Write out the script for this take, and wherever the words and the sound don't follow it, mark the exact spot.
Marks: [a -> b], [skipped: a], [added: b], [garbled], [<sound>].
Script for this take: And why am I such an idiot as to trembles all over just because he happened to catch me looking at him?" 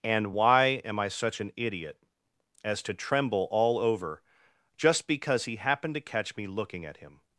And why am I such an idiot as to [trembles -> tremble] all over just because he happened to catch me looking at him?"